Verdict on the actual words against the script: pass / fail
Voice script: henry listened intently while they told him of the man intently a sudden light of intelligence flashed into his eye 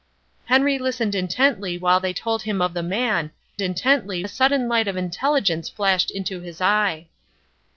pass